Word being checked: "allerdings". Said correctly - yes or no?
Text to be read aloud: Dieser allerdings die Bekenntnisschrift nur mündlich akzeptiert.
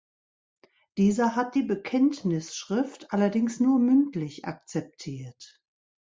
no